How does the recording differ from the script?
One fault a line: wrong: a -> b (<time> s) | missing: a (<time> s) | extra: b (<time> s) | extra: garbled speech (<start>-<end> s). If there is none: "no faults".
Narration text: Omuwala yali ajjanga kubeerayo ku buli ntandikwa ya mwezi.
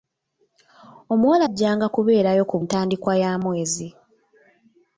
missing: yali (1.4 s)
missing: buli (2.6 s)